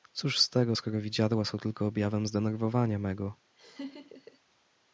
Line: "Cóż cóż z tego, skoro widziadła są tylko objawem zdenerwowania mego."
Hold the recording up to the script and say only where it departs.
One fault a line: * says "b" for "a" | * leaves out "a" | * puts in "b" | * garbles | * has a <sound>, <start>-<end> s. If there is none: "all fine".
* leaves out "cóż"
* has a laugh, 3.6-4.4 s